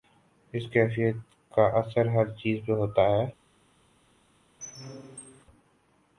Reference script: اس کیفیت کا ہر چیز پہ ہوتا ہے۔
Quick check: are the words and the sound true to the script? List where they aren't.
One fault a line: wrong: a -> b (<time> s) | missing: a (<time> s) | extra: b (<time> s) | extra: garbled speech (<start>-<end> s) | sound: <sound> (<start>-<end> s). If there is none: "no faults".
extra: اثر (1.8 s)
sound: squeak (4.6-5.4 s)